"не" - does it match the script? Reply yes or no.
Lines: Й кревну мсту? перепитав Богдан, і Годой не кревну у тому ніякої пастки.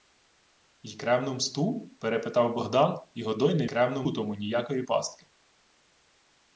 yes